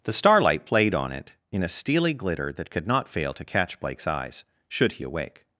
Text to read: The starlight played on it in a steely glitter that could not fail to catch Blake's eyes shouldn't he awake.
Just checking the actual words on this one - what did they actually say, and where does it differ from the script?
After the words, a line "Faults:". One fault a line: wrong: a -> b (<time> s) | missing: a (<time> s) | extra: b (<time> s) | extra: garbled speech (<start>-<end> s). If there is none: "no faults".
The starlight played on it in a steely glitter that could not fail to catch Blake's eyes should he awake.
Faults:
wrong: shouldn't -> should (4.7 s)